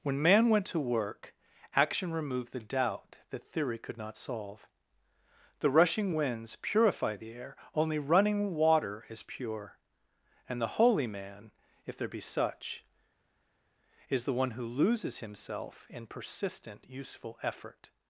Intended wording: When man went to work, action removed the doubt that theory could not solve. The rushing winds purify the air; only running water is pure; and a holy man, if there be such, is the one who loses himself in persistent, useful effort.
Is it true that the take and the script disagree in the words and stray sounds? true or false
true